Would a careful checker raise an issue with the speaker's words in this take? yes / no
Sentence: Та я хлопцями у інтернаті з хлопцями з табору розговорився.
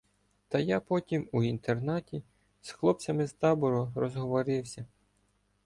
yes